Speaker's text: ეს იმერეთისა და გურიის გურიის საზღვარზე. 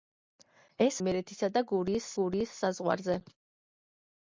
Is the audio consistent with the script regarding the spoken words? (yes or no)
yes